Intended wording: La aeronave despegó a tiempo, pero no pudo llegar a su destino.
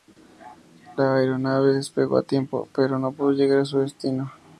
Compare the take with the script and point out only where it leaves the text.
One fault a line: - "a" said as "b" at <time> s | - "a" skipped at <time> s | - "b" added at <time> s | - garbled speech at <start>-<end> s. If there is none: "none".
none